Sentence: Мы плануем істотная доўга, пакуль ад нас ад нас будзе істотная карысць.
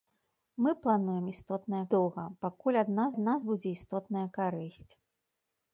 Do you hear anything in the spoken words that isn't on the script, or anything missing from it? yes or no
no